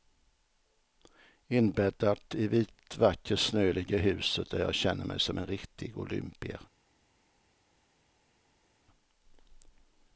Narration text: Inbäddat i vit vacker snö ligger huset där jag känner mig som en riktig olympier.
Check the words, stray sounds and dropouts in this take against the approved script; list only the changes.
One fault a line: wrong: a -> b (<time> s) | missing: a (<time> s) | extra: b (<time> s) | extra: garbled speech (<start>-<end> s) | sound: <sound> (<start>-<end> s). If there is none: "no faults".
no faults